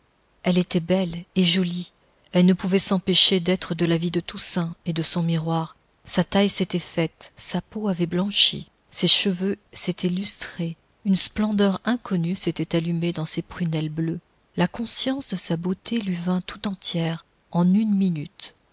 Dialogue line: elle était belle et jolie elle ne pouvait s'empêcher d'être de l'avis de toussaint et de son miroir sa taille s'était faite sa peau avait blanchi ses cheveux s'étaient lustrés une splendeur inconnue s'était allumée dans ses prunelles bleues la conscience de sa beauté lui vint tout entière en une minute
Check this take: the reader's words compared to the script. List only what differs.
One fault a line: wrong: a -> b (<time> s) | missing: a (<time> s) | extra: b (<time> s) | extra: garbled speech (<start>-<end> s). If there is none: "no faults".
no faults